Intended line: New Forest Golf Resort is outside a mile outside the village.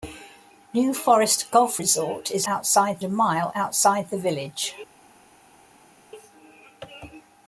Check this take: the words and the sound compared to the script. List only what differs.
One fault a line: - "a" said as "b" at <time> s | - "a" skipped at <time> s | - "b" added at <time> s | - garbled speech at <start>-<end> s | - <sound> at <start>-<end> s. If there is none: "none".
none